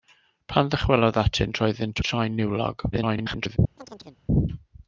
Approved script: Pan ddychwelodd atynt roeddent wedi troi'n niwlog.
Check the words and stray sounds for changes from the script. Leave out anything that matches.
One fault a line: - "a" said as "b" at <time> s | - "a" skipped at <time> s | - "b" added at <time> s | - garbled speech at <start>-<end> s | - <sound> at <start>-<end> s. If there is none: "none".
- "wedi" skipped at 2.0 s
- garbled speech at 2.9-3.6 s
- chirp at 3.8-4.2 s